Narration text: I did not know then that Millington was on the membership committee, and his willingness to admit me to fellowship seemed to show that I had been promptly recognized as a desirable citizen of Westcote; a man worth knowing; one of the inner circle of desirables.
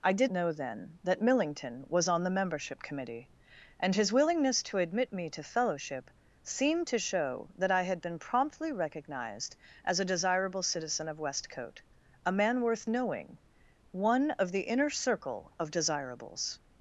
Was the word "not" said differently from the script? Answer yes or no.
yes